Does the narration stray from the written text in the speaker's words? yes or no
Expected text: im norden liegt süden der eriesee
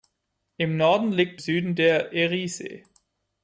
no